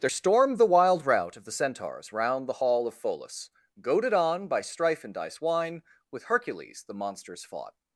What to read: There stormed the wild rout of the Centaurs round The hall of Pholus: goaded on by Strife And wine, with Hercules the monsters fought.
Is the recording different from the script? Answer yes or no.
yes